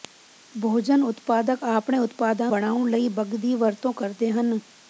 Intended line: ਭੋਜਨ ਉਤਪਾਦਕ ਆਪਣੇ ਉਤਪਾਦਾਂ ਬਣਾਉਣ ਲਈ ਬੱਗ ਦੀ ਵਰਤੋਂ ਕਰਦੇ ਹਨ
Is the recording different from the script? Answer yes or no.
no